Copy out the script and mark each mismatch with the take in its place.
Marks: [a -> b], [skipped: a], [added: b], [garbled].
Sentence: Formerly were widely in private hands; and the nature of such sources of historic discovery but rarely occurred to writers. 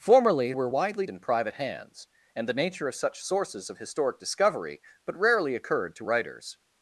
Formerly were widely in private hands; and the nature of such sources of historic discovery but rarely occurred to writers.